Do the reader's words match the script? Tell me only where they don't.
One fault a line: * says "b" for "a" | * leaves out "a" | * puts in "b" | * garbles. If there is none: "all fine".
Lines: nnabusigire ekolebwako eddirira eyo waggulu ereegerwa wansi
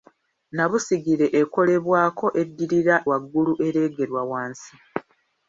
* leaves out "eyo"